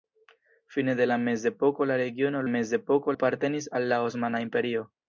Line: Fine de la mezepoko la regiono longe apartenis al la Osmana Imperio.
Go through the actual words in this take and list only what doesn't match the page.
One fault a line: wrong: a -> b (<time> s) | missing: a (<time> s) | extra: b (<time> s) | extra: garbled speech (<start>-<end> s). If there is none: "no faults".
wrong: longe -> mezepoko (2.5 s)